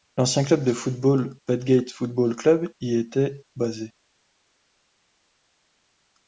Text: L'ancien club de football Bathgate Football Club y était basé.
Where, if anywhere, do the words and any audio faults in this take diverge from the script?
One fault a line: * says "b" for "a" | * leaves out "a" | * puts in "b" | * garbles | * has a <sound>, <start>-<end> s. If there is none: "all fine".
all fine